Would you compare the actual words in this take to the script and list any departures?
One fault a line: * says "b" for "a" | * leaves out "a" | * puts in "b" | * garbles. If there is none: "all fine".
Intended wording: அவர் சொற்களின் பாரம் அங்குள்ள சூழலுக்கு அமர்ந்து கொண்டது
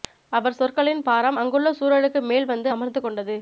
* puts in "மேல் வந்து"